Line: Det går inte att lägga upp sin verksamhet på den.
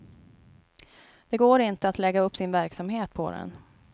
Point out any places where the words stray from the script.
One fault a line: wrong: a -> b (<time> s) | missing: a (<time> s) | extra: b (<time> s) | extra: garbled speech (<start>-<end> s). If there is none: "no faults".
no faults